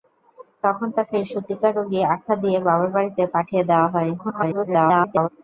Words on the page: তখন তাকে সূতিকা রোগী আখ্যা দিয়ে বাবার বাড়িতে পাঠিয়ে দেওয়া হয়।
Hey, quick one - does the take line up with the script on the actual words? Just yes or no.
no